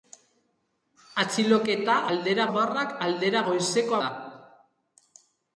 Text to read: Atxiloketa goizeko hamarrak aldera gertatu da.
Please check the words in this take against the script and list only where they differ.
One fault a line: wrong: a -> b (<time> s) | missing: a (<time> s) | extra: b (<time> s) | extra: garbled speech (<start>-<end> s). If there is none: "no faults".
wrong: goizeko -> aldera (2.1 s)
wrong: gertatu -> goizeko (3.5 s)